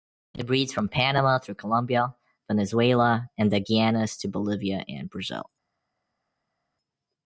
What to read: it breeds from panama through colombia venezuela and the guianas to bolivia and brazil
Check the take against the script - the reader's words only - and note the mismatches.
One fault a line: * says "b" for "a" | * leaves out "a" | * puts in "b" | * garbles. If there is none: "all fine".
all fine